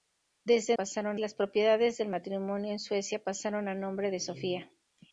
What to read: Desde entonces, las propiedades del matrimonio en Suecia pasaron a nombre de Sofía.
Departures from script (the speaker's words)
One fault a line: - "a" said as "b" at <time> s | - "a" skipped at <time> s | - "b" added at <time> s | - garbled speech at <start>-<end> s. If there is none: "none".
- "entonces" said as "pasaron" at 0.7 s